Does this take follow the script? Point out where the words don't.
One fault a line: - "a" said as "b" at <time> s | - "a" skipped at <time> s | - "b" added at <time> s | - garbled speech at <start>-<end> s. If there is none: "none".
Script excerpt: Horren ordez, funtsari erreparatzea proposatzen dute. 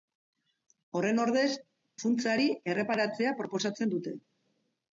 none